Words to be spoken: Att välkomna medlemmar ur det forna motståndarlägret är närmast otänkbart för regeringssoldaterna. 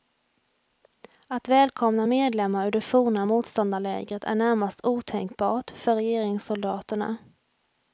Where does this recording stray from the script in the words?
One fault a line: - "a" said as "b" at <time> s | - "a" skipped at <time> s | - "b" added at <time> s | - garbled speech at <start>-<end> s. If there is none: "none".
none